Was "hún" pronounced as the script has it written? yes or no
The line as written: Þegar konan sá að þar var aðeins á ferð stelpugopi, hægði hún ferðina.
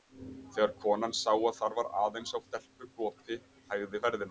no